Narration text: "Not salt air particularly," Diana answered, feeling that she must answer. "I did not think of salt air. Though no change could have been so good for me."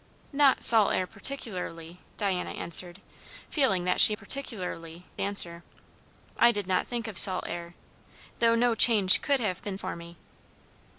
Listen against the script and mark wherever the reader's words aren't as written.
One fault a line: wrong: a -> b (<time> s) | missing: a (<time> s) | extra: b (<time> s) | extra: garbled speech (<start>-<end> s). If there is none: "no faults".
wrong: must -> particularly (4.1 s)
missing: so good (9.8 s)